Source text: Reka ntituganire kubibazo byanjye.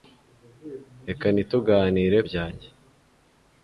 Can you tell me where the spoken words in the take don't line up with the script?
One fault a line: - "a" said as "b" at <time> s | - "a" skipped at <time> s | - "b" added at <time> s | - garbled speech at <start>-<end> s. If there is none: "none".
- "kubibazo" skipped at 2.2 s